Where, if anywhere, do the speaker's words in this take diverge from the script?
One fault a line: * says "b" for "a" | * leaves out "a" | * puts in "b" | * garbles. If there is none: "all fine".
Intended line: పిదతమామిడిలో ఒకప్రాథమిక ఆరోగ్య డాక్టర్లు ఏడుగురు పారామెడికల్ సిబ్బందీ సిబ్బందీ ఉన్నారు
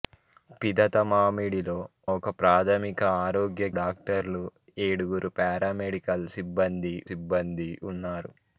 all fine